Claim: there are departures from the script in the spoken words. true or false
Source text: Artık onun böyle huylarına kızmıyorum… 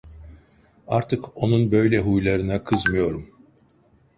false